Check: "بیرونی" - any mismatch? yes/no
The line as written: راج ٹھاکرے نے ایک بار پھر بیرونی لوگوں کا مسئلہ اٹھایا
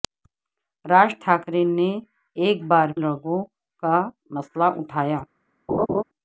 yes